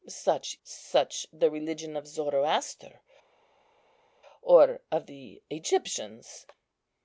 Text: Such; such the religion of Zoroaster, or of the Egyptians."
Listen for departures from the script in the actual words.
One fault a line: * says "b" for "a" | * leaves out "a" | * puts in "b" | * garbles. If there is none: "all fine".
all fine